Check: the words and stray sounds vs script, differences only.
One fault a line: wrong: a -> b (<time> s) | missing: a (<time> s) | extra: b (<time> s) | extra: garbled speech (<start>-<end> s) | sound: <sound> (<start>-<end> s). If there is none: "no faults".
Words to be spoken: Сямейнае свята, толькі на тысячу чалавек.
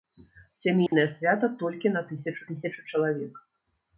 sound: dropout (0.9-0.9 s)
extra: тысячу (2.5 s)